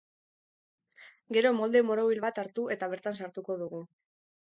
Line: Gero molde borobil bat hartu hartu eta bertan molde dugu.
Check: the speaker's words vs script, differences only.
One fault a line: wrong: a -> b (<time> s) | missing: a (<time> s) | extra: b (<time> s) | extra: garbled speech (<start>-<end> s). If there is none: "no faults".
missing: hartu (2.7 s)
wrong: molde -> sartuko (3.2 s)